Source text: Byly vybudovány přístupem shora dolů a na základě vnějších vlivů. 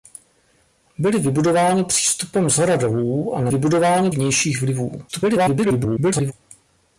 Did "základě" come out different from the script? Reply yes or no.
yes